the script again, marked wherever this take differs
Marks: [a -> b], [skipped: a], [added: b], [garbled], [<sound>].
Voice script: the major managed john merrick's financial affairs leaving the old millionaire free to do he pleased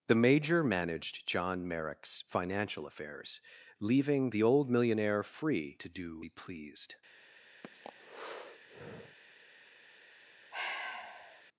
the major managed john merrick's financial affairs leaving the old millionaire free to do he pleased [breath] [sigh]